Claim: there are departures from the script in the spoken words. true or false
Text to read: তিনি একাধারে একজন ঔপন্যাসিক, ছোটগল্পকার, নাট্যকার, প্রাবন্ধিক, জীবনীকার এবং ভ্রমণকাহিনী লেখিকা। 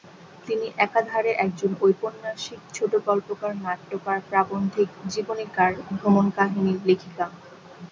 true